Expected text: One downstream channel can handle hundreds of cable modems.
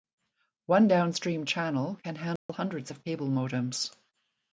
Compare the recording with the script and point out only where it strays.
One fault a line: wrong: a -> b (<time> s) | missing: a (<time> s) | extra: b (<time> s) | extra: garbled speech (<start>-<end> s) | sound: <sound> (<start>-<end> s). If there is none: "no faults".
sound: dropout (2.4-2.5 s)